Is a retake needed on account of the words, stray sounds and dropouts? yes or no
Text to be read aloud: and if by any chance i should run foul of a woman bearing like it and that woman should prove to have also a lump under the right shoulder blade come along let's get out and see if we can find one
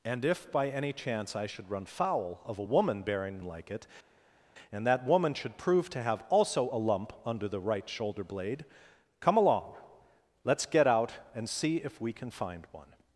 no